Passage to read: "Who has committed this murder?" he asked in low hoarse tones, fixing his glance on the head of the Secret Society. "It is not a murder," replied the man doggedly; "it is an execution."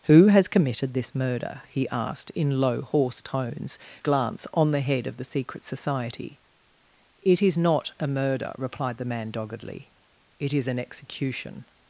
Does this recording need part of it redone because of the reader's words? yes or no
yes